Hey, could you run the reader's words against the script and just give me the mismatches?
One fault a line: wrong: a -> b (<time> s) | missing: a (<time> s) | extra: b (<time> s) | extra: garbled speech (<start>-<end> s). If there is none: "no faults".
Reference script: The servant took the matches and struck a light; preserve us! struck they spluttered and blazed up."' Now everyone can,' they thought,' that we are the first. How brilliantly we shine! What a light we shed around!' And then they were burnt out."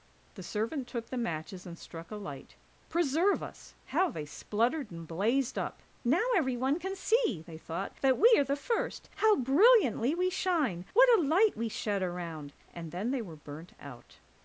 wrong: struck -> how (3.9 s)
extra: see (7.0 s)